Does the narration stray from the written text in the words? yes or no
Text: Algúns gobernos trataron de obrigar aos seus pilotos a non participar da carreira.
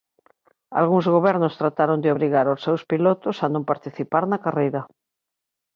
yes